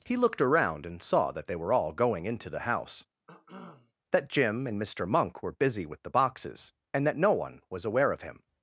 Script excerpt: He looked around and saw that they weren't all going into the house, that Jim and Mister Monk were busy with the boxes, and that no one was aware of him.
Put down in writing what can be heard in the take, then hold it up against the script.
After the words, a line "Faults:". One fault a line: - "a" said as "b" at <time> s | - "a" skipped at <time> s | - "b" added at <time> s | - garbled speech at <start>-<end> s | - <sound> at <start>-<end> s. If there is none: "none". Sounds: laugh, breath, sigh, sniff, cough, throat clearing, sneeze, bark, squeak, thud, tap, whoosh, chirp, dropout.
He looked around and saw that they were all going into the house, that Jim and Mister Monk were busy with the boxes, and that no one was aware of him.
Faults:
- "weren't" said as "were" at 1.6 s
- cough at 3.3-3.9 s